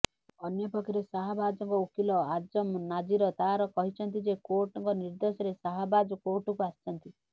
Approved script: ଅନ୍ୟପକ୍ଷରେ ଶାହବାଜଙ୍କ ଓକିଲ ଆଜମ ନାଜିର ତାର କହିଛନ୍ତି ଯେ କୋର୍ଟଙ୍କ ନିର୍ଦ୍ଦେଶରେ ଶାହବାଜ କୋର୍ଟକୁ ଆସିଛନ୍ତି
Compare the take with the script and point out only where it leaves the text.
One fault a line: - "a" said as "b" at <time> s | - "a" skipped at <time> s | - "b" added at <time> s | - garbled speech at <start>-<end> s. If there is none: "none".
none